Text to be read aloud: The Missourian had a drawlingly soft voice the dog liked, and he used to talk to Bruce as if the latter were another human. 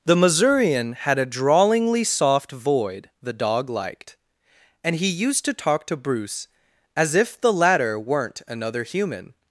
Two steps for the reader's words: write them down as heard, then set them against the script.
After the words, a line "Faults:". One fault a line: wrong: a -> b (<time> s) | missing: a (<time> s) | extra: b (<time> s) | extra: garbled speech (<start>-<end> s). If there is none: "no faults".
The Missourian had a drawlingly soft void the dog liked, and he used to talk to Bruce as if the latter weren't another human.
Faults:
wrong: voice -> void (2.5 s)
wrong: were -> weren't (8.0 s)